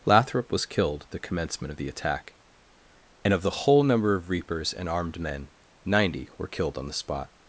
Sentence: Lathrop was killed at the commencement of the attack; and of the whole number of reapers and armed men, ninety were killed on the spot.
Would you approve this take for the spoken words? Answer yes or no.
yes